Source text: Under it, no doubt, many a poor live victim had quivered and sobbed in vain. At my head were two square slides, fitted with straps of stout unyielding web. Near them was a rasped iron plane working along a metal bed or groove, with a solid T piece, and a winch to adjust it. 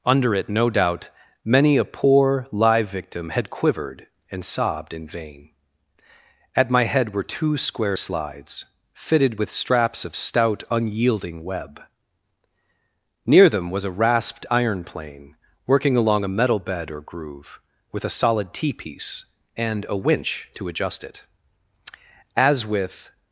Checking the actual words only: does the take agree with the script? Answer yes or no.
no